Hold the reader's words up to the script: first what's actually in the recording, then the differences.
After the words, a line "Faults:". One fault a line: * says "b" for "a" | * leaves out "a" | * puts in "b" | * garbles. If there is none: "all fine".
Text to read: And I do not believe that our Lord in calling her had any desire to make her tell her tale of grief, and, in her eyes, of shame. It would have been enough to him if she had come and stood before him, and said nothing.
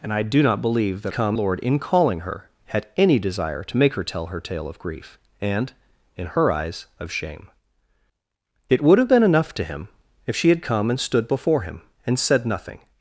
And I do not believe that come Lord in calling her had any desire to make her tell her tale of grief, and, in her eyes, of shame. It would have been enough to him if she had come and stood before him, and said nothing.
Faults:
* says "come" for "our"